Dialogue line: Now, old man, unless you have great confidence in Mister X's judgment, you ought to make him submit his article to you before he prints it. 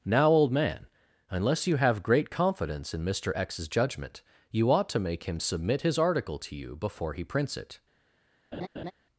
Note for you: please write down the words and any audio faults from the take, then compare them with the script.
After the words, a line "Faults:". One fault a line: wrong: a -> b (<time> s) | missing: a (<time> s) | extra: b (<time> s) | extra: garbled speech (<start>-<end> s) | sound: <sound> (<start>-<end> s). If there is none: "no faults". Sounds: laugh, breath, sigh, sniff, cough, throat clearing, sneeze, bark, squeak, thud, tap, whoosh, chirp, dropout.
Now, old man, unless you have great confidence in Mister X's judgment, you ought to make him submit his article to you before he prints it.
Faults:
sound: laugh (8.5-8.9 s)